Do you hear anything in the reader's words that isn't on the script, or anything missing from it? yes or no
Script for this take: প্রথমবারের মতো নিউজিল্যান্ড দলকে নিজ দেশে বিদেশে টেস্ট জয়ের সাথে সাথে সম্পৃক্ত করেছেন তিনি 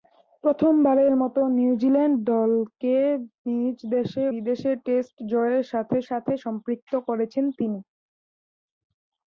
no